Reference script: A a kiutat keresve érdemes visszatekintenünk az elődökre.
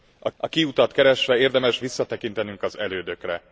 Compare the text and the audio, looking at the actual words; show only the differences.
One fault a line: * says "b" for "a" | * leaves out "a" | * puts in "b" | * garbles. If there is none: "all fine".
all fine